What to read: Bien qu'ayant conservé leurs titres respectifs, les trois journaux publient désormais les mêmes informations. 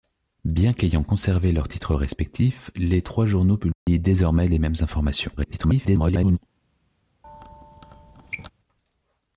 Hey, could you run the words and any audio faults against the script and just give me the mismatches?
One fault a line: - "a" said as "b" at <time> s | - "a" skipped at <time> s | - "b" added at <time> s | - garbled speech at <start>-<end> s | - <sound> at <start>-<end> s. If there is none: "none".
- dropout at 3.7-3.9 s
- garbled speech at 5.4-6.4 s
- squeak at 7.2-8.5 s